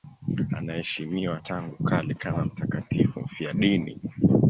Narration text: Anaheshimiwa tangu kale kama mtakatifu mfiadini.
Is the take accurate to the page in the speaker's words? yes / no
yes